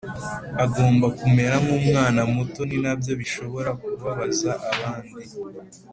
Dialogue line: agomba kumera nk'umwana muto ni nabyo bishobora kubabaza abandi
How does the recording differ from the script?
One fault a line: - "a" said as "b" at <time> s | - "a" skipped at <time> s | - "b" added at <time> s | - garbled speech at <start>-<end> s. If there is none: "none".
none